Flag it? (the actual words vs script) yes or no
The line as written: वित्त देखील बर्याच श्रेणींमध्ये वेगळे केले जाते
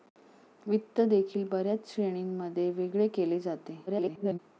yes